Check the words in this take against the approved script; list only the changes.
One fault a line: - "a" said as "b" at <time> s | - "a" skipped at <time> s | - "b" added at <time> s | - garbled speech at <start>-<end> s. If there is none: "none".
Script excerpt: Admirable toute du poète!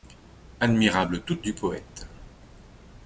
none